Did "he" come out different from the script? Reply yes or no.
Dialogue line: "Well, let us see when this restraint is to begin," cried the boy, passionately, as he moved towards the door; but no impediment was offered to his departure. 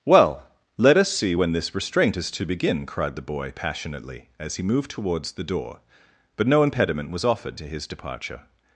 no